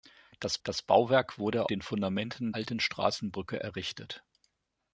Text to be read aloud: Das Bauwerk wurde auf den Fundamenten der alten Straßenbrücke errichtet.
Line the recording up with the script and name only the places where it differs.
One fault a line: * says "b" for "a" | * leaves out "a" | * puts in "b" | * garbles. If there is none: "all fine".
* puts in "das"
* leaves out "auf"
* leaves out "der"